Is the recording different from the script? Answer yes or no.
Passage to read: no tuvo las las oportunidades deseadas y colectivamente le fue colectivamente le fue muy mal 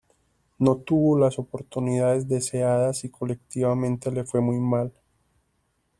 yes